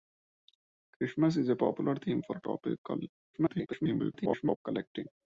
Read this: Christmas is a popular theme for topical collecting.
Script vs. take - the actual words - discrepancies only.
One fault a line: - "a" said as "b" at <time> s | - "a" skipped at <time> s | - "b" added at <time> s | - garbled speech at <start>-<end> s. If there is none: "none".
- garbled speech at 3.3-4.6 s